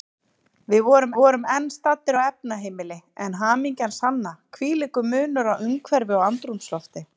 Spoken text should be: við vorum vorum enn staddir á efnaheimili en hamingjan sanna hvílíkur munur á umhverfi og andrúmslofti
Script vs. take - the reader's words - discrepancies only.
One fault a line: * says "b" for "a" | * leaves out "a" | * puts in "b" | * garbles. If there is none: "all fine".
all fine